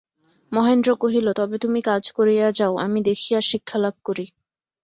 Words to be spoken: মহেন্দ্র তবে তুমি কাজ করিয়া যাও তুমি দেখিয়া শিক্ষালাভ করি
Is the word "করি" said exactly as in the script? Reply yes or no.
yes